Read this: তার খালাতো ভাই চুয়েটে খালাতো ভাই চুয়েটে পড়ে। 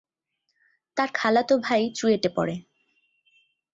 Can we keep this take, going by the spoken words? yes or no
no